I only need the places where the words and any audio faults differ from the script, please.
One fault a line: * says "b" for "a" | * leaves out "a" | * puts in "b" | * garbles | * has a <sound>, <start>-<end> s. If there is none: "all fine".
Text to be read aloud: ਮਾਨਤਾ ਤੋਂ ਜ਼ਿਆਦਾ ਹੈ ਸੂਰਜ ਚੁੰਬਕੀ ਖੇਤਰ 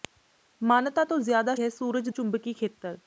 all fine